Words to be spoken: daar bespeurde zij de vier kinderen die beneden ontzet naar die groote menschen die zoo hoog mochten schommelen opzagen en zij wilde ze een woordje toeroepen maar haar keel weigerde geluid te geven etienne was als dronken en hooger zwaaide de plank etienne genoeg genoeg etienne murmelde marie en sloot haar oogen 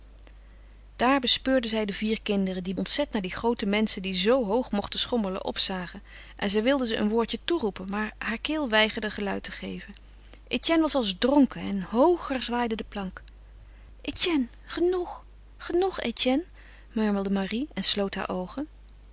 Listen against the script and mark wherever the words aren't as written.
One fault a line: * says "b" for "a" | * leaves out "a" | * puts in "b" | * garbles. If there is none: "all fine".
* leaves out "beneden"